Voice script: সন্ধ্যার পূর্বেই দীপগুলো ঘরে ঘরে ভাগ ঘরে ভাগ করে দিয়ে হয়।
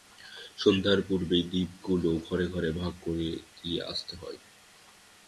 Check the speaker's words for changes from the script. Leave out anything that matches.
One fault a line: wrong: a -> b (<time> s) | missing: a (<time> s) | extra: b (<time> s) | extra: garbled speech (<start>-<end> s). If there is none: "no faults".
missing: ঘরে ভাগ (2.9 s)
extra: আসতে (3.8 s)